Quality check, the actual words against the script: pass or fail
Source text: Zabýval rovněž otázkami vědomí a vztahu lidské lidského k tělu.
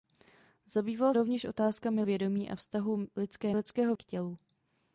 pass